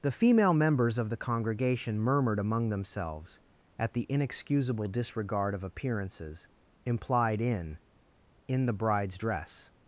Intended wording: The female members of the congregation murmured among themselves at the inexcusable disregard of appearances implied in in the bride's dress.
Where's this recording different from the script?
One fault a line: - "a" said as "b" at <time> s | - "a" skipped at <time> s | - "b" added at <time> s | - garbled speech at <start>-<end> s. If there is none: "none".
none